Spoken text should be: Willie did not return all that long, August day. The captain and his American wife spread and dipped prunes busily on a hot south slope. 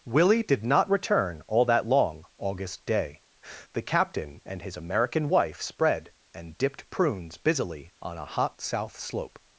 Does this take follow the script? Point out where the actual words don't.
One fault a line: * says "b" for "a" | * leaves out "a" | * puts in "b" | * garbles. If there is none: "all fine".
all fine